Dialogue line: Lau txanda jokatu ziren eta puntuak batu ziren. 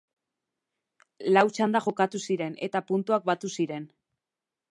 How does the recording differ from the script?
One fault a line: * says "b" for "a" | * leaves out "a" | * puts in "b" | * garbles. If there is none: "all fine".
all fine